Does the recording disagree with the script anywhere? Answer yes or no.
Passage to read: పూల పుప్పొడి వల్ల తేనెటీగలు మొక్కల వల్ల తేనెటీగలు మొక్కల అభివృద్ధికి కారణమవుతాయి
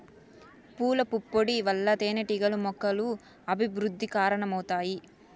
yes